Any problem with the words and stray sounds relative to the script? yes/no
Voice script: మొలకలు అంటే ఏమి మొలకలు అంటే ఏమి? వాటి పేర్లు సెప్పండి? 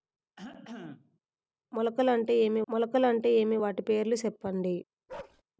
yes